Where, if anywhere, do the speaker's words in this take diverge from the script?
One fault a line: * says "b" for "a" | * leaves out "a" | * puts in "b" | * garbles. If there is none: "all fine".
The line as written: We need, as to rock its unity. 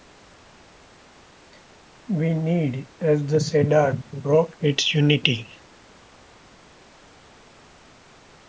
* puts in "the cedar"